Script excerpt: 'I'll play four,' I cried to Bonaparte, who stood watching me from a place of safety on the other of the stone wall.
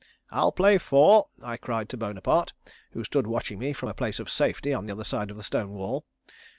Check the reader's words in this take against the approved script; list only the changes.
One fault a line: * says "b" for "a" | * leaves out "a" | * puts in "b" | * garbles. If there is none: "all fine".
* puts in "side"